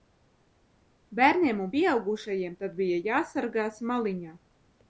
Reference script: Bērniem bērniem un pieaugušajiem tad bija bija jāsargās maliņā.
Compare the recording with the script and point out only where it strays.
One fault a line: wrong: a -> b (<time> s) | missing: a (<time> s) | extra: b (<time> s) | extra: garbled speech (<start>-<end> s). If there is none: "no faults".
missing: bērniem (1.6 s)
missing: bija (3.0 s)